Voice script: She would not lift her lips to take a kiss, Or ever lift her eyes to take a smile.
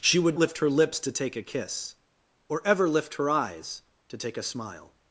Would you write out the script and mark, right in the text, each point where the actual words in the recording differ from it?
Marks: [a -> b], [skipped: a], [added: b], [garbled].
She would [skipped: not] lift her lips to take a kiss, Or ever lift her eyes to take a smile.